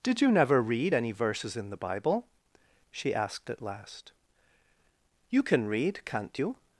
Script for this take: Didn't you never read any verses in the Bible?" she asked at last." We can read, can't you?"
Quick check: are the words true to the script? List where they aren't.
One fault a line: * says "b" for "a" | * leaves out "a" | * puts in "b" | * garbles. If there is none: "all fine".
* says "Did" for "Didn't"
* says "You" for "We"